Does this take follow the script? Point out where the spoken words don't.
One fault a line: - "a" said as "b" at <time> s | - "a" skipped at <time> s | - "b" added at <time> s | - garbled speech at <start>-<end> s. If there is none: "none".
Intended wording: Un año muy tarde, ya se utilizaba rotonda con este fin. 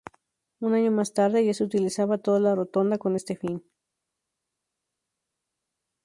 - "muy" said as "más" at 0.9 s
- "toda la" added at 2.2 s